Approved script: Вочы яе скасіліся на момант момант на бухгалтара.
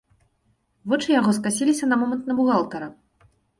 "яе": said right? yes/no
no